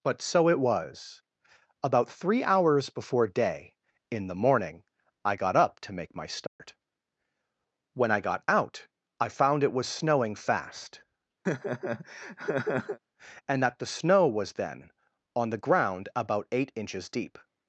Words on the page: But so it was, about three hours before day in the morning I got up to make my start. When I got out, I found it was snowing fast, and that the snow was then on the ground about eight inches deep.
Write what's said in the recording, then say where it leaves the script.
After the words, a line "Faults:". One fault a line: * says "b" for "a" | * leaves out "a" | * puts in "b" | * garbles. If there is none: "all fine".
But so it was, about three hours before day in the morning I got up to make my start. When I got out, I found it was snowing fast, and that the snow was then on the ground about eight inches deep.
Faults:
all fine